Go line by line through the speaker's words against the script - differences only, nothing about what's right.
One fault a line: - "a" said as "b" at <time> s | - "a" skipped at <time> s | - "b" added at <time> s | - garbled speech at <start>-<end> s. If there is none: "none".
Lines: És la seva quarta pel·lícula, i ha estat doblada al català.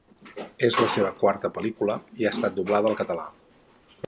none